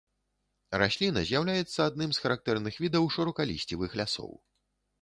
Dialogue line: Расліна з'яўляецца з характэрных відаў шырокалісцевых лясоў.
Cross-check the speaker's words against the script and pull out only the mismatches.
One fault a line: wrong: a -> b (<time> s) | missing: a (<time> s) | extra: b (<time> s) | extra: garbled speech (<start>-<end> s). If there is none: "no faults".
extra: адным (1.9 s)